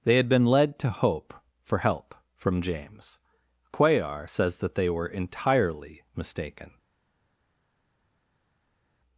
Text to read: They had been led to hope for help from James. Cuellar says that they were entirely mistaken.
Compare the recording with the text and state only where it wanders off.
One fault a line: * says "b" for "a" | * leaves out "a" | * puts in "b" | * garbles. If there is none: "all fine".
all fine